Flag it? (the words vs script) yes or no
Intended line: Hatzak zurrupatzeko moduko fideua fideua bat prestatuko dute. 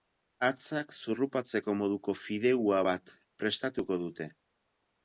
yes